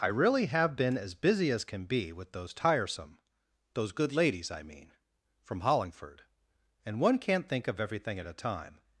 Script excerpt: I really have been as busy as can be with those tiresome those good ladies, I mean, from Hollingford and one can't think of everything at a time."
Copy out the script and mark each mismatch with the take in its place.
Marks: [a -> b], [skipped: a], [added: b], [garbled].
I really have been as busy as can be with those tiresome those good ladies, I mean, from Hollingford and one can't think of everything at a time."